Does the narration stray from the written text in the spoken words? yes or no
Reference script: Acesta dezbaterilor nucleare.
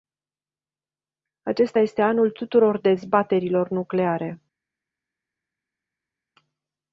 yes